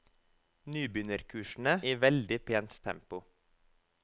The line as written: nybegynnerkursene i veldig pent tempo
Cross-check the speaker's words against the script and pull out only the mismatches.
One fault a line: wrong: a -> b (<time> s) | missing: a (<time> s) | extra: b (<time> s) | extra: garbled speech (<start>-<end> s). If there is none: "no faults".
no faults